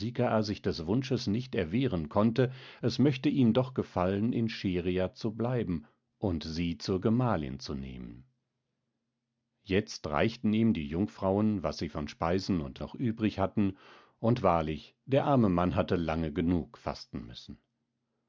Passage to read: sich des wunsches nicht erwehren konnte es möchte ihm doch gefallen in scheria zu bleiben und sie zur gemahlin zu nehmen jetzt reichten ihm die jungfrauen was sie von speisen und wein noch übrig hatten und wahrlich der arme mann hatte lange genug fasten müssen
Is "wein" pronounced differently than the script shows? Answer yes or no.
yes